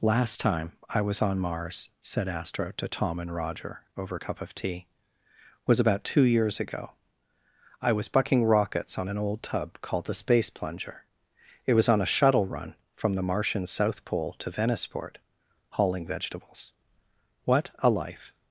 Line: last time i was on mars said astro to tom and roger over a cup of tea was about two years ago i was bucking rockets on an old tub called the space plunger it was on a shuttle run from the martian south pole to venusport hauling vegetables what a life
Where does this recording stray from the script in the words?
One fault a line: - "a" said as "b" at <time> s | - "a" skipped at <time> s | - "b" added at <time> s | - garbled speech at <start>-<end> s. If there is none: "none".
none